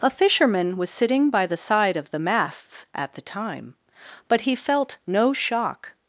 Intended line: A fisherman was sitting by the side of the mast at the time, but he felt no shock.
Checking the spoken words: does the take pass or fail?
fail